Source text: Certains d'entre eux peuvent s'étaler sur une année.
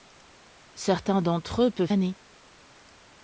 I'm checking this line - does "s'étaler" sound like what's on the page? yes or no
no